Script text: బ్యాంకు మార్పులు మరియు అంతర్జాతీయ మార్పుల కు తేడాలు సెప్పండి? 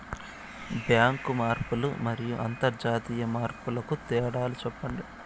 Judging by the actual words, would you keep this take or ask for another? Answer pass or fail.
pass